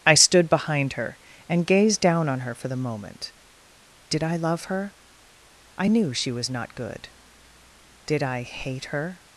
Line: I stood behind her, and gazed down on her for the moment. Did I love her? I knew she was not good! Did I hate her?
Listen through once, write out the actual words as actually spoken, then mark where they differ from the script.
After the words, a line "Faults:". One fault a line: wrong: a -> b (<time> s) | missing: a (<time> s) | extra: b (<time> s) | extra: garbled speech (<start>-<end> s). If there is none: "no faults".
I stood behind her, and gazed down on her for the moment. Did I love her? I knew she was not good! Did I hate her?
Faults:
no faults